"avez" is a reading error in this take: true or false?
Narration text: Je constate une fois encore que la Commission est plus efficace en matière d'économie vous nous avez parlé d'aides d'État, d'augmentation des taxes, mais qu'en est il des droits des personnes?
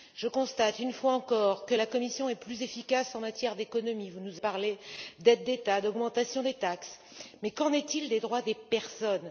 true